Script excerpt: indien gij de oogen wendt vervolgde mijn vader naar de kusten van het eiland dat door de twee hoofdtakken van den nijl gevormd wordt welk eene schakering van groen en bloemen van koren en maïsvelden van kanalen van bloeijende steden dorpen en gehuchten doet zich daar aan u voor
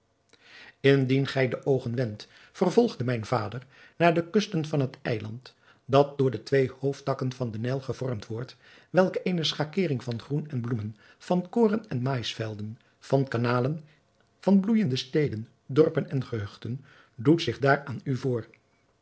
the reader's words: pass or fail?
pass